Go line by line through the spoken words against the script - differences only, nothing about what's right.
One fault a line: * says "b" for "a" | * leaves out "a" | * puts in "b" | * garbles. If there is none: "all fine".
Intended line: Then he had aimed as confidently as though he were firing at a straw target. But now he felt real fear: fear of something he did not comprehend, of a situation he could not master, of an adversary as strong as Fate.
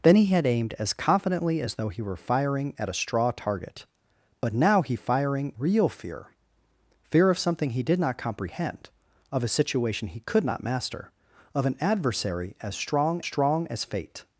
* says "firing" for "felt"
* puts in "strong"